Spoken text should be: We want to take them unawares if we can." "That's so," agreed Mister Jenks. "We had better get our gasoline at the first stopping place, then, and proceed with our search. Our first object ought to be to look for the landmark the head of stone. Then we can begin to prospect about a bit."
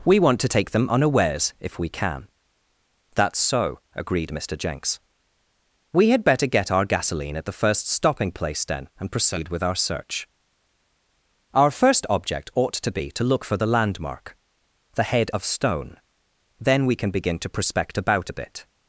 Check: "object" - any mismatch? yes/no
no